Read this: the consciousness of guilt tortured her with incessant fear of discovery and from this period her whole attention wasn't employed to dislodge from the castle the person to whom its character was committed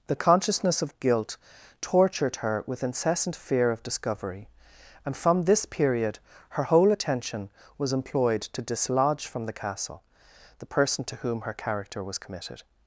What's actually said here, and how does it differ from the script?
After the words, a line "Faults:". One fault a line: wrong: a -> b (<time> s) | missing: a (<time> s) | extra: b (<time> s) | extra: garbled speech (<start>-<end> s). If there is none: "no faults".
the consciousness of guilt tortured her with incessant fear of discovery and from this period her whole attention was employed to dislodge from the castle the person to whom her character was committed
Faults:
wrong: wasn't -> was (7.8 s)
wrong: its -> her (11.4 s)